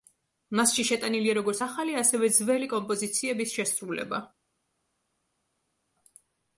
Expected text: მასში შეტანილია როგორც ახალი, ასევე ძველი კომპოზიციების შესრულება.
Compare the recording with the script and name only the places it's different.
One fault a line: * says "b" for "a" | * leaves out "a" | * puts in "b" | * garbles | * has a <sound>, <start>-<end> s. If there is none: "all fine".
all fine